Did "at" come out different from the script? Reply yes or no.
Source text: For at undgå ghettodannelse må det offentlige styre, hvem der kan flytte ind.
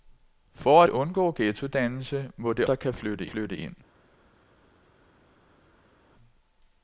yes